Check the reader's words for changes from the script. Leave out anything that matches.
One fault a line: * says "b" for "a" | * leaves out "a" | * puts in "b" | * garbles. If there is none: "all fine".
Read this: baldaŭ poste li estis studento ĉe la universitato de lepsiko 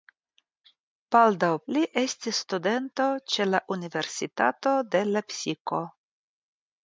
* leaves out "poste"